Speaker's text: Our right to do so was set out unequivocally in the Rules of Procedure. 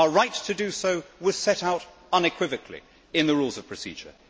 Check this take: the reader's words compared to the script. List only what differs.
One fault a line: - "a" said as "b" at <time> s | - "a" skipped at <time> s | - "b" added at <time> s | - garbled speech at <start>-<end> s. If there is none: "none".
none